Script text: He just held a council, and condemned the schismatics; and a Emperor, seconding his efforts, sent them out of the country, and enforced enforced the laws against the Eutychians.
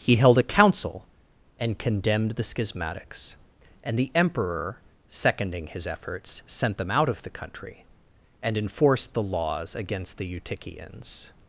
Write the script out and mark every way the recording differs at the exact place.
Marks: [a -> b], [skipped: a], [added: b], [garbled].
He [skipped: just] held a council, and condemned the schismatics; and [a -> the] Emperor, seconding his efforts, sent them out of the country, and enforced [skipped: enforced] the laws against the Eutychians.